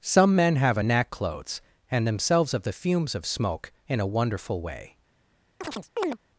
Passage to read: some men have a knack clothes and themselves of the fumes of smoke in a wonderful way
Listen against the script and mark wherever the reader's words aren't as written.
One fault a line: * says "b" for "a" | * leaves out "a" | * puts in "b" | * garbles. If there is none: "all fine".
all fine